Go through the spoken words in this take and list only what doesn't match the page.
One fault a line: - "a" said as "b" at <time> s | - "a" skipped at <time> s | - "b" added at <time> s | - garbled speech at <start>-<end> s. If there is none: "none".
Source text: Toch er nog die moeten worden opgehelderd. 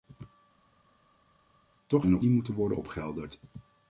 none